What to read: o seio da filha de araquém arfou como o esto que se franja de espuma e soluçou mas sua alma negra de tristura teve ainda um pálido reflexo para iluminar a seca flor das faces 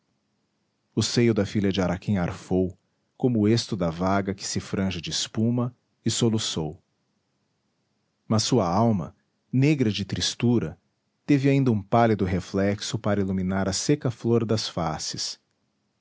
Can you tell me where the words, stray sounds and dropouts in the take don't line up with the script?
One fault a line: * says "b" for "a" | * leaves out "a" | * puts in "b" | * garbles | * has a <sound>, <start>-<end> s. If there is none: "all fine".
* puts in "da vaga"